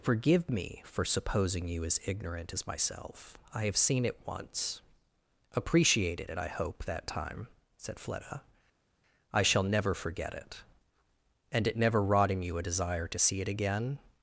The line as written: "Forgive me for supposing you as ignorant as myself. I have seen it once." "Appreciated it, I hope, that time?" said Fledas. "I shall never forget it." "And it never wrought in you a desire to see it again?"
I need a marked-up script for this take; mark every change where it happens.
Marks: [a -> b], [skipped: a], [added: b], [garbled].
"Forgive me for supposing you as ignorant as myself. I have seen it once." "Appreciated it, I hope, that time?" said [Fledas. -> Fleda] "I shall never forget it." "And it never wrought in you a desire to see it again?"